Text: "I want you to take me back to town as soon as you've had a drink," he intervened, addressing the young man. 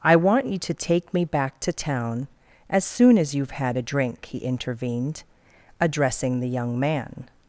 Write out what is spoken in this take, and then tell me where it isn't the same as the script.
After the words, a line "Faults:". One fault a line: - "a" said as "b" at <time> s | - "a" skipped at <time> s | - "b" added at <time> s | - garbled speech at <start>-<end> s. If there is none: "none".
"I want you to take me back to town as soon as you've had a drink," he intervened, addressing the young man.
Faults:
none